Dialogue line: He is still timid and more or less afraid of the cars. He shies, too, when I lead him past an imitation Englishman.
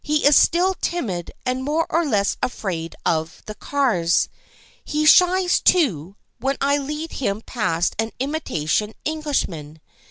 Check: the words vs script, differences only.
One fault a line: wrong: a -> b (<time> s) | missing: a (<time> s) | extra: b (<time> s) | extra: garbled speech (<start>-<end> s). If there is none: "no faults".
no faults